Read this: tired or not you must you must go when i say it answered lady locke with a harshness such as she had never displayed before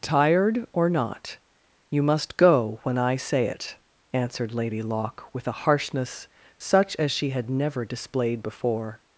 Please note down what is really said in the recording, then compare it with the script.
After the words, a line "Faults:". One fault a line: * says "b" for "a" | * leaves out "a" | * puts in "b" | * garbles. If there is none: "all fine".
tired or not you must go when i say it answered lady locke with a harshness such as she had never displayed before
Faults:
* leaves out "you must"